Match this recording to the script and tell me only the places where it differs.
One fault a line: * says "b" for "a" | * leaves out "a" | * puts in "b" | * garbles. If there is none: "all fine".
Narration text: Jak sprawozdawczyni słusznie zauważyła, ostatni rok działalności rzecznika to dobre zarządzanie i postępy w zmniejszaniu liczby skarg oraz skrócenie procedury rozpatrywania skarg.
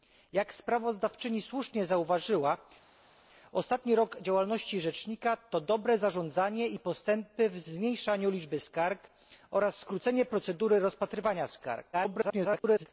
* garbles